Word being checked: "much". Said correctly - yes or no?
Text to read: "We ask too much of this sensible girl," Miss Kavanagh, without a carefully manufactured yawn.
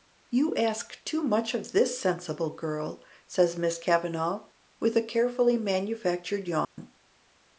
yes